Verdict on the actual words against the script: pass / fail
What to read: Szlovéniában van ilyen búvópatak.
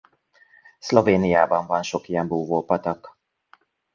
fail